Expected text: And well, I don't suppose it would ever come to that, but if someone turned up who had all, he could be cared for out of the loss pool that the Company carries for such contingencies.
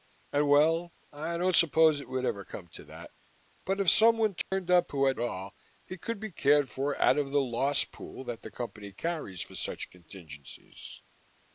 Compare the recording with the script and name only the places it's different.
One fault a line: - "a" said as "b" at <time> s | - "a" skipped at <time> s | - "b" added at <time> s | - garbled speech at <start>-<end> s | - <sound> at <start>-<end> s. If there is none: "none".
- dropout at 4.4-4.5 s